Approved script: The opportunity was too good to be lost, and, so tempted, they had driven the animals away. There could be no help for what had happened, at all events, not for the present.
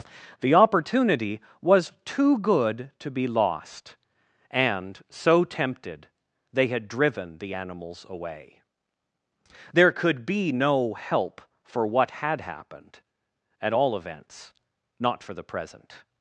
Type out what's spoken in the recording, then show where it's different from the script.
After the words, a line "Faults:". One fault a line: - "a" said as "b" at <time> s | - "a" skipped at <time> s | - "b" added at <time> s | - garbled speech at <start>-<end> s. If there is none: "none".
The opportunity was too good to be lost, and, so tempted, they had driven the animals away. There could be no help for what had happened, at all events, not for the present.
Faults:
none